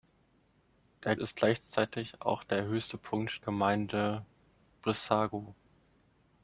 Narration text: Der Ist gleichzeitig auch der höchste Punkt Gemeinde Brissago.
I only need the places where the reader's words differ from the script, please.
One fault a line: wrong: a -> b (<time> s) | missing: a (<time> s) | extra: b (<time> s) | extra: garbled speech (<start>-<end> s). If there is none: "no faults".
no faults